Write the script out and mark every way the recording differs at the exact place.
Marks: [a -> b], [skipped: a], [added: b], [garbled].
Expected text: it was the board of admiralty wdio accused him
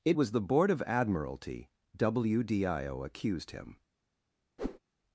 it was the board of admiralty wdio accused him